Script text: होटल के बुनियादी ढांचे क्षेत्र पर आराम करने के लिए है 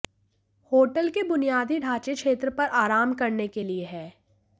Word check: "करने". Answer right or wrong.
right